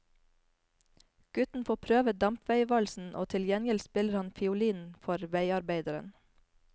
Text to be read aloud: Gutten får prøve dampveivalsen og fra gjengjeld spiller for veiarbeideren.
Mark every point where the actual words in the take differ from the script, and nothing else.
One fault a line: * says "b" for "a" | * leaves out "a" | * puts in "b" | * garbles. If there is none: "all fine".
* says "til" for "fra"
* puts in "han fiolin"